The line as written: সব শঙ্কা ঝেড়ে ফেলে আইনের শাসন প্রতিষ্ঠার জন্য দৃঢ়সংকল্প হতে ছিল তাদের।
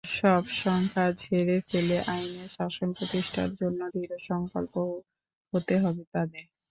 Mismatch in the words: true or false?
true